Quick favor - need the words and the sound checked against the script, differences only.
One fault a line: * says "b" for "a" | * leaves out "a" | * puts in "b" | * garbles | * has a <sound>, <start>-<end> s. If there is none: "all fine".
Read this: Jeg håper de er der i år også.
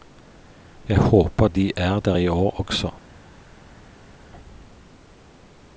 all fine